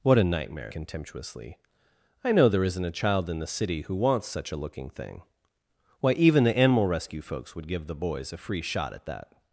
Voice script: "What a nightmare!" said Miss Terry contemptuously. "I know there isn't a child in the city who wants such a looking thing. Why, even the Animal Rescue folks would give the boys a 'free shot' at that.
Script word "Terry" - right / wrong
wrong